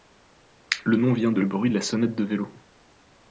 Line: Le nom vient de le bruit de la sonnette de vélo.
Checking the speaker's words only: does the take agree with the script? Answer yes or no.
yes